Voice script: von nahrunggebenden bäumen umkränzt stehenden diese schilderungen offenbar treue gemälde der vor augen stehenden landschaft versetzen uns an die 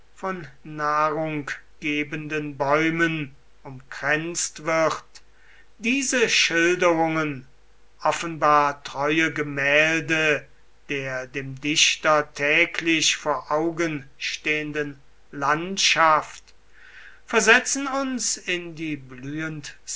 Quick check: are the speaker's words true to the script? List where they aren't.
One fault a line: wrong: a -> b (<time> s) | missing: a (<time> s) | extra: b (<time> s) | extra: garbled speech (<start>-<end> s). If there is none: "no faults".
wrong: stehenden -> wird (4.6 s)
extra: dem dichter täglich (11.3 s)
wrong: an -> in (18.4 s)